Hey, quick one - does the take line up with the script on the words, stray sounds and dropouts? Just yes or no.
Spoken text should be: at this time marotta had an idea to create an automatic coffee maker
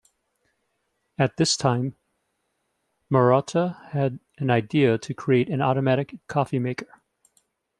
yes